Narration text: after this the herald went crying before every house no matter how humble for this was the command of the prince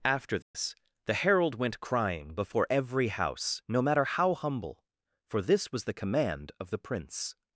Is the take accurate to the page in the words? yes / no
yes